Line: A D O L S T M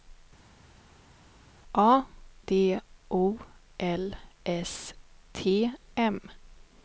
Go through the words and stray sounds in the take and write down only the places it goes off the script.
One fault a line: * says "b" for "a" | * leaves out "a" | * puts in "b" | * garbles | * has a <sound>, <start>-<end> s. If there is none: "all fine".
all fine